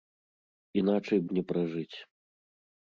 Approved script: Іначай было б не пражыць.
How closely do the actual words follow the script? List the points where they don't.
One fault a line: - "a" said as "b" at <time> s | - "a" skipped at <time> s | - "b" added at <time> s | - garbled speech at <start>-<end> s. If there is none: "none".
- "было" skipped at 1.2 s